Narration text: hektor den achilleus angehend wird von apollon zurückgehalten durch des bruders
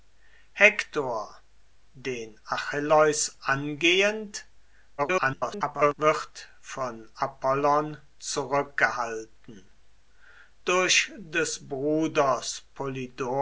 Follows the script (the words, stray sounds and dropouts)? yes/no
no